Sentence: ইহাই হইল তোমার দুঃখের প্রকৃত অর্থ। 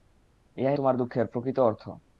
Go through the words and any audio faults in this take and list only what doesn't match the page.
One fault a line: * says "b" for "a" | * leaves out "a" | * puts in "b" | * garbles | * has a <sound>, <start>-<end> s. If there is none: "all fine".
* leaves out "হইল"